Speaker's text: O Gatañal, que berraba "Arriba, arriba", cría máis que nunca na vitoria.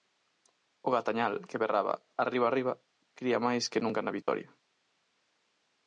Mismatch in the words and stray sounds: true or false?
true